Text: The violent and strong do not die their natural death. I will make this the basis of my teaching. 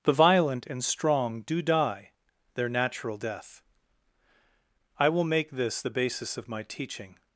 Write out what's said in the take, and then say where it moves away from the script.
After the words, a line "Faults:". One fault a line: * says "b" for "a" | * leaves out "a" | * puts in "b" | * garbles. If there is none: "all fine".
The violent and strong do die their natural death. I will make this the basis of my teaching.
Faults:
* leaves out "not"